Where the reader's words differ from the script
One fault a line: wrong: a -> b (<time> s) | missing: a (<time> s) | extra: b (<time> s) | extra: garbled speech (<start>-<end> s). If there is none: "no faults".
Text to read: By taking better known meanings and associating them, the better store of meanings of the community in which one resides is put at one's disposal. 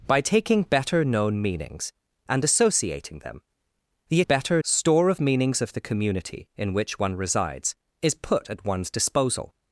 no faults